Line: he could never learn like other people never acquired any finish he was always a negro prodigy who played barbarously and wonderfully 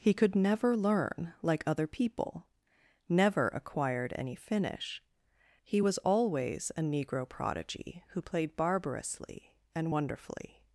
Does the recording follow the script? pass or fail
pass